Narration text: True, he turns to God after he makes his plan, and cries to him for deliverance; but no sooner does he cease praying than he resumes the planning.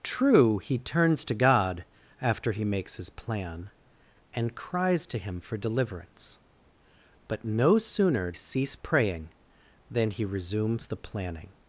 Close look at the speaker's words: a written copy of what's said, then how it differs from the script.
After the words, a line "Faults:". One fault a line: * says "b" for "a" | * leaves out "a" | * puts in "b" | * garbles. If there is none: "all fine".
True, he turns to God after he makes his plan, and cries to him for deliverance; but no sooner cease praying than he resumes the planning.
Faults:
* leaves out "does he"